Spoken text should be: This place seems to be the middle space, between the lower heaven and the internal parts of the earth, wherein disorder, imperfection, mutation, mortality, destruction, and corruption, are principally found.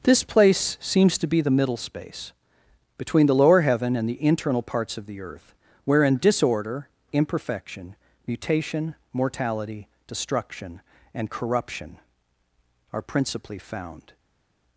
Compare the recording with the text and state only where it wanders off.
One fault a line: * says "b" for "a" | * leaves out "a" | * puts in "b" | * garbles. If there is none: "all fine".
all fine